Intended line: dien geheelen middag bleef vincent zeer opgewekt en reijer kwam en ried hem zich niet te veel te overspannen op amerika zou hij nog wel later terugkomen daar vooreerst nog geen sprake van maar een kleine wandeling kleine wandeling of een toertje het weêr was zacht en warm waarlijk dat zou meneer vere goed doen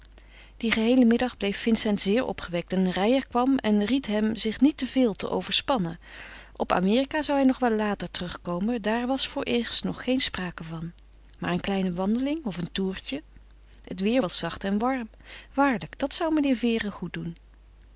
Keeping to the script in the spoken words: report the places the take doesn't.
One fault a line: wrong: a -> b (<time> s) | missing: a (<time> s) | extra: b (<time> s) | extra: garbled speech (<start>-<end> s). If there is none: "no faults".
extra: was (9.1 s)
missing: kleine wandeling (12.5 s)